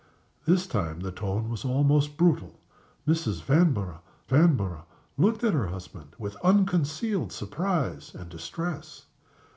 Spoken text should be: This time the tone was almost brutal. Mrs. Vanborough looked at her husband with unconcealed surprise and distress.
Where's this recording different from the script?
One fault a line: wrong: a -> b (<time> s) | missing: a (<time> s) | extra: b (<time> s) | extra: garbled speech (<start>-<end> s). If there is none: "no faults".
extra: vanborough (4.3 s)